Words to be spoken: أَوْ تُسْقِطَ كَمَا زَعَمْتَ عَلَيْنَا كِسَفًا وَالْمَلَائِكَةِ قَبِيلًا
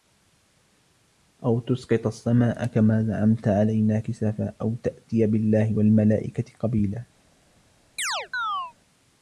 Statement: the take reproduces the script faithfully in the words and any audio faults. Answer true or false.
false